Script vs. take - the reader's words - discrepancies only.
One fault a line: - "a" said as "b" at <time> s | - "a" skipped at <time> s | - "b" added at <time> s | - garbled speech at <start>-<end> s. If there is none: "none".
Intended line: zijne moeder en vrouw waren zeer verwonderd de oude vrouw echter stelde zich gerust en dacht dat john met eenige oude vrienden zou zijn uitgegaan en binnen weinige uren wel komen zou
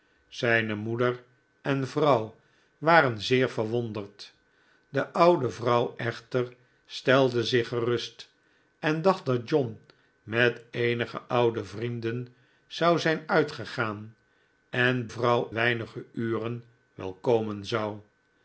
- "binnen" said as "vrouw" at 15.1 s